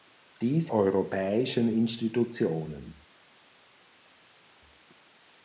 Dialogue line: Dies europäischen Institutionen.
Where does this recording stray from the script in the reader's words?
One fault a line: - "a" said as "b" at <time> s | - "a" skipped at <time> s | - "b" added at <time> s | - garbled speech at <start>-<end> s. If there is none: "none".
none